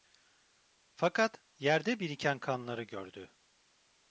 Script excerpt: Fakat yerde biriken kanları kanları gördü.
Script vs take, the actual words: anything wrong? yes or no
yes